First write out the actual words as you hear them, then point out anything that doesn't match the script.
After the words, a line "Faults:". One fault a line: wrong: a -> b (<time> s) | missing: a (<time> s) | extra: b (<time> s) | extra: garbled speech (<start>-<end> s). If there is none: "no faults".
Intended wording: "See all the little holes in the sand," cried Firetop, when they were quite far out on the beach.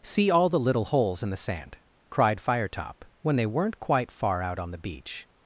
"See all the little holes in the sand," cried Firetop, when they weren't quite far out on the beach.
Faults:
wrong: were -> weren't (3.5 s)